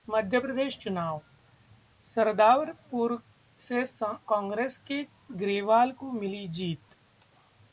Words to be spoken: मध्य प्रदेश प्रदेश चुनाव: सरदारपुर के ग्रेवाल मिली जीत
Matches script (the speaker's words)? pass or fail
fail